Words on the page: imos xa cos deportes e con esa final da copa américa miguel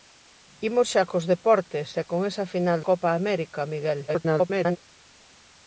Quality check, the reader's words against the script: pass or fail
fail